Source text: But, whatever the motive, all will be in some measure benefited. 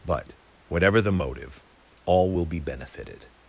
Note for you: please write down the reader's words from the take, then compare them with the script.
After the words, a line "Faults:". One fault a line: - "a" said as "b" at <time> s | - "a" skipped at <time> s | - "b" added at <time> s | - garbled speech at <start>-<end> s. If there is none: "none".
But, whatever the motive, all will be benefited.
Faults:
- "in some measure" skipped at 2.6 s